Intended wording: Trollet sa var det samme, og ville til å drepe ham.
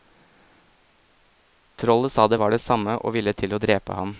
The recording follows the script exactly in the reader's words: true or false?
false